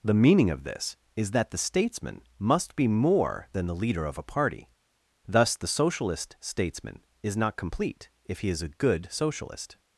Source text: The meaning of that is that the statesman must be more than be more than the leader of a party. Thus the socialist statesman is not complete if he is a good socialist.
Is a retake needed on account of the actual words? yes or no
yes